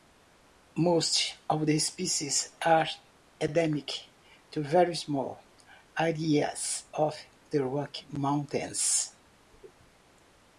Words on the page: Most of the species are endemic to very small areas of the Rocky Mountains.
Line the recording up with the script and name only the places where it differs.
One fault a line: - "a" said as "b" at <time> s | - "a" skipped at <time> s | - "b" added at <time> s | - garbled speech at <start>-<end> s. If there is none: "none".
none